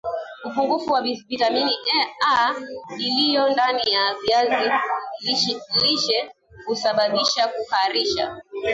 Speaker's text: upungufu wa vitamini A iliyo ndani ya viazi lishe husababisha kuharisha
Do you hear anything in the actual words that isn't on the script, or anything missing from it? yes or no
no